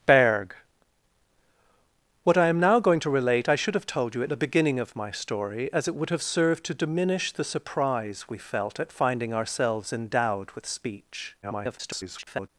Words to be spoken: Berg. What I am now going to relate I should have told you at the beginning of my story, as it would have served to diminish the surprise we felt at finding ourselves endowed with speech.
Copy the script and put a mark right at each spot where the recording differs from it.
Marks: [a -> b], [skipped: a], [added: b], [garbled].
Berg. What I am now going to relate I should have told you at the beginning of my story, as it would have served to diminish the surprise we felt at finding ourselves endowed with speech. [garbled]